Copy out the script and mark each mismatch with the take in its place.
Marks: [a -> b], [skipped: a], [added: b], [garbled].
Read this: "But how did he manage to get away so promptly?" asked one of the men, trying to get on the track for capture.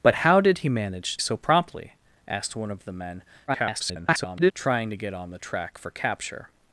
"But how did he manage [skipped: to get away] so promptly?" asked one of the men, [garbled] trying to get on the track for capture.